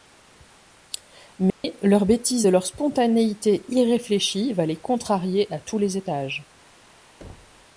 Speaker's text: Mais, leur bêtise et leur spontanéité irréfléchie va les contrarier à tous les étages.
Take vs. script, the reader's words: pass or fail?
pass